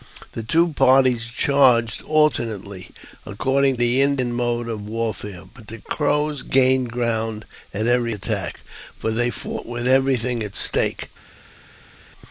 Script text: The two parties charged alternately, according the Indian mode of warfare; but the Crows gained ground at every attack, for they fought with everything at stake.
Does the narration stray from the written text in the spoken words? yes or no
no